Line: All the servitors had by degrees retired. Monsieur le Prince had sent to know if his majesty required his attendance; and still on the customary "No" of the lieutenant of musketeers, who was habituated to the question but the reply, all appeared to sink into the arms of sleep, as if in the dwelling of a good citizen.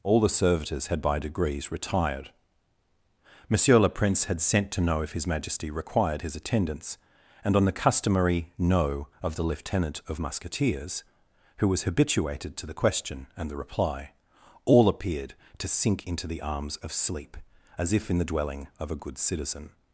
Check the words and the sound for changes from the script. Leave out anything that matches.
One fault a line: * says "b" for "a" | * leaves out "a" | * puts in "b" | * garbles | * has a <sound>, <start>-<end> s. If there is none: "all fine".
* leaves out "still"
* says "and" for "but"